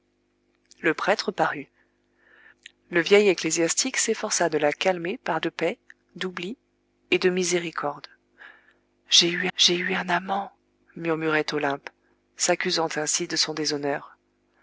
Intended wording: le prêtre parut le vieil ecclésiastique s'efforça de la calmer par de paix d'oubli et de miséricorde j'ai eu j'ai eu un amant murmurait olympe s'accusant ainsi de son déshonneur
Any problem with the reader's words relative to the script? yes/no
no